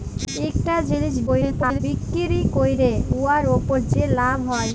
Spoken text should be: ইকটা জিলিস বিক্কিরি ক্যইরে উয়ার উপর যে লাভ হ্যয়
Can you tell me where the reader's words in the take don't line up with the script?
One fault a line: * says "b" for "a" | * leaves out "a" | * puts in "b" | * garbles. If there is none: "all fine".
* garbles